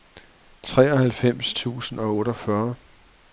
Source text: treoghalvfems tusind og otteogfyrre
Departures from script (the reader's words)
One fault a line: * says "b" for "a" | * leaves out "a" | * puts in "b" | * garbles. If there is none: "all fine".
all fine